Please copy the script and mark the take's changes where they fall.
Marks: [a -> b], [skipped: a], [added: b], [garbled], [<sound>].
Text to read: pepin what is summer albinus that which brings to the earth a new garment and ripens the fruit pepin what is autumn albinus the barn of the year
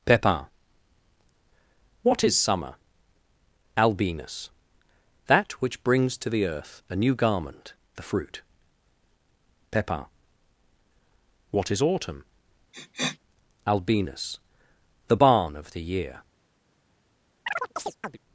pepin what is summer albinus that which brings to the earth a new garment [skipped: and ripens] the fruit pepin what is autumn [sniff] albinus the barn of the year [chirp]